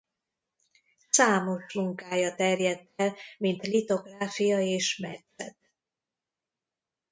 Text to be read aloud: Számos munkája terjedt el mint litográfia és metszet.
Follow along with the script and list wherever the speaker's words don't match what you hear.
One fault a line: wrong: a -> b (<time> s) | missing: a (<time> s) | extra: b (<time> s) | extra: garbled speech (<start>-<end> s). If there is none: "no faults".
no faults